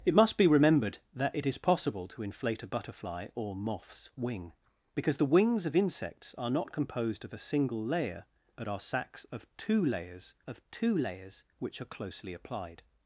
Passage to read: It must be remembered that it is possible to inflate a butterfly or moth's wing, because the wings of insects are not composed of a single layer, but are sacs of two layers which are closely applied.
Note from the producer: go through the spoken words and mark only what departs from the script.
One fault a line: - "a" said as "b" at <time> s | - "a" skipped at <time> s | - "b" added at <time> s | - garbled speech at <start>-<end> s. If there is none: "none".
- "of two layers" added at 10.5 s